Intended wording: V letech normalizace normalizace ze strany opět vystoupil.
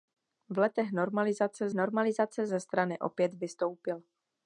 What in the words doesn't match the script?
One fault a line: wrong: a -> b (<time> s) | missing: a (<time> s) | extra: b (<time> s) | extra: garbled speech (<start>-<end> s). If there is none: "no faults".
no faults